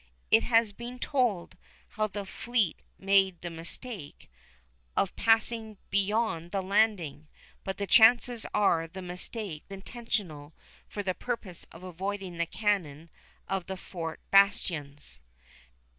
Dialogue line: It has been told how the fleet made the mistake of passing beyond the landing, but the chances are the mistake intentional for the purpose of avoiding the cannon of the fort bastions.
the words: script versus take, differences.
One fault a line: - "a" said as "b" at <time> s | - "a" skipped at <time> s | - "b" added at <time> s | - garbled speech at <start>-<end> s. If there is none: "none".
none